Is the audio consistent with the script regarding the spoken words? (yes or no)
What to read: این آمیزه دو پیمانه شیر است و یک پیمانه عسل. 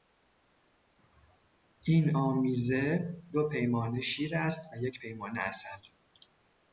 yes